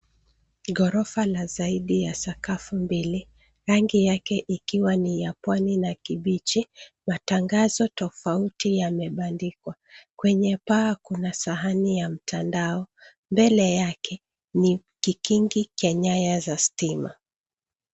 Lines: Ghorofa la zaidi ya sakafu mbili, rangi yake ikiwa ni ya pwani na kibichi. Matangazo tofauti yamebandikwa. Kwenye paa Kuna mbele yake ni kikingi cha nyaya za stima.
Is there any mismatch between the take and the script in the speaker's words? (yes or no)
yes